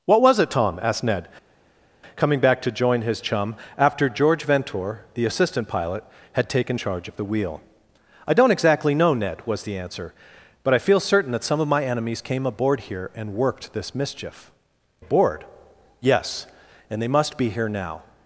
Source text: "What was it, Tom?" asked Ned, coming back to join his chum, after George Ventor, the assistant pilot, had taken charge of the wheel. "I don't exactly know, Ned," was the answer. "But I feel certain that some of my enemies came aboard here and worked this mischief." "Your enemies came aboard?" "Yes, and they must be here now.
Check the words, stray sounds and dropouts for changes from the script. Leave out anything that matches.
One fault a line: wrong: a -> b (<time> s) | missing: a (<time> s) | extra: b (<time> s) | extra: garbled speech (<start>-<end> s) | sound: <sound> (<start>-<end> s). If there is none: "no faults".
missing: Your enemies came (14.5 s)